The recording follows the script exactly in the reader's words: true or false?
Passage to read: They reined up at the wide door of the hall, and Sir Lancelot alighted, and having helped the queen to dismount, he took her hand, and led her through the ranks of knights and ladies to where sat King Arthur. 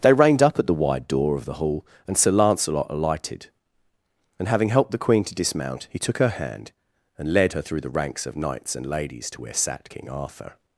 true